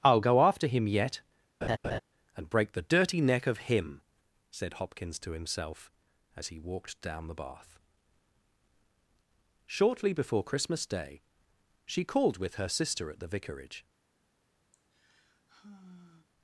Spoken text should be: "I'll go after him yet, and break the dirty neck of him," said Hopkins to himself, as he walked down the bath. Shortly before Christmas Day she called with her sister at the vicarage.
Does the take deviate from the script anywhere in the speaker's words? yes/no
no